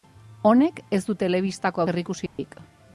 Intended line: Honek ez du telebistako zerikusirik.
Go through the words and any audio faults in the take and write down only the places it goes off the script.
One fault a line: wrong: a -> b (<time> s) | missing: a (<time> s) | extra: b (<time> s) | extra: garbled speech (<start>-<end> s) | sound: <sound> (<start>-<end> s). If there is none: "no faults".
sound: dropout (2.3-2.4 s)